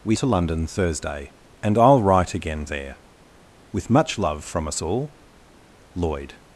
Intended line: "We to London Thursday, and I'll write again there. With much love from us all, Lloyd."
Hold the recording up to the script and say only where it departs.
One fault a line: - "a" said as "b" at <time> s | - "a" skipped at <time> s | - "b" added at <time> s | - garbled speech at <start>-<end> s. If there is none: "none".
none